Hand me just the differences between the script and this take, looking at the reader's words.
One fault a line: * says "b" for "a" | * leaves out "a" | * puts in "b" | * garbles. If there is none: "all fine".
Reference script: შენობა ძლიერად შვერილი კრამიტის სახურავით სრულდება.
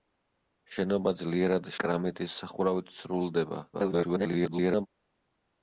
* leaves out "შვერილი"
* garbles